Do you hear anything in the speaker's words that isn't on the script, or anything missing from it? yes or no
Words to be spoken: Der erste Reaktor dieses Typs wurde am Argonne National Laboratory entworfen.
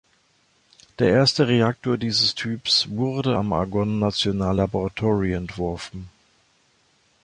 no